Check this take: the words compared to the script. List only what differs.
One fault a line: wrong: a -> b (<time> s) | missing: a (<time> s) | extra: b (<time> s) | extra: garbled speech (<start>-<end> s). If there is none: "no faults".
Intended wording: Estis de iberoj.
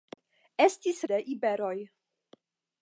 no faults